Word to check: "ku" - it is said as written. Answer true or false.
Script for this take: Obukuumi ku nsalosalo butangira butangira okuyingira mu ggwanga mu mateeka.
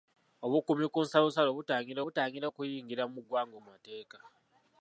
true